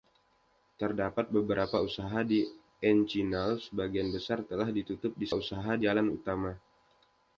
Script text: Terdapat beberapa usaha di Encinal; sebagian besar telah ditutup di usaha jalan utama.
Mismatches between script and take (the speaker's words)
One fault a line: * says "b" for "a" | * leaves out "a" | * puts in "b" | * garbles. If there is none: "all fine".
all fine